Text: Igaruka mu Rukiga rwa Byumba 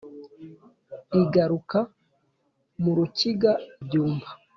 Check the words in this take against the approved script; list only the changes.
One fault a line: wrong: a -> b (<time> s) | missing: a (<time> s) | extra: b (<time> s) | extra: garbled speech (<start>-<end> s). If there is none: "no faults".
missing: rwa (3.5 s)